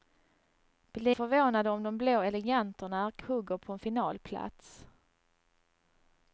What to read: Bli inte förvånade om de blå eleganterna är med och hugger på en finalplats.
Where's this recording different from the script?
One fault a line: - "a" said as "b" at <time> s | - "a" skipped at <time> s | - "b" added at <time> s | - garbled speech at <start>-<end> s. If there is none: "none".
- "inte" skipped at 1.1 s
- "med och" skipped at 3.2 s